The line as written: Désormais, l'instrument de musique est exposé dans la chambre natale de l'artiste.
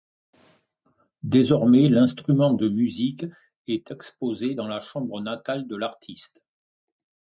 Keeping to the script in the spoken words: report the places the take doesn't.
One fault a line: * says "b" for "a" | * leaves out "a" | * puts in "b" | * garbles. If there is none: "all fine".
all fine